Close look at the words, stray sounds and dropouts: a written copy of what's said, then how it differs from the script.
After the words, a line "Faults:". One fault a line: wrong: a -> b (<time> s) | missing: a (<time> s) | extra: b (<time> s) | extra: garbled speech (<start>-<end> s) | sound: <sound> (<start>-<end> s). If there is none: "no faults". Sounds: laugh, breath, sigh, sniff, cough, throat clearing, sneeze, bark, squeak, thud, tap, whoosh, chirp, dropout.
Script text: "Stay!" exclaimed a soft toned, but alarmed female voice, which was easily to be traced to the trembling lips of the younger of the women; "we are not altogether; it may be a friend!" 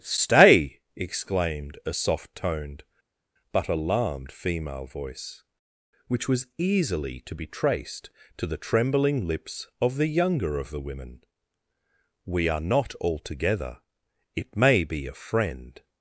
"Stay!" exclaimed a soft toned, but alarmed female voice, which was easily to be traced to the trembling lips of the younger of the women; "we are not altogether; it may be a friend!"
Faults:
no faults